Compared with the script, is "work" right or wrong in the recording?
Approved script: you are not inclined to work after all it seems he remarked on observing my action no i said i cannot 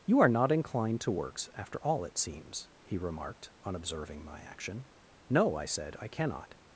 wrong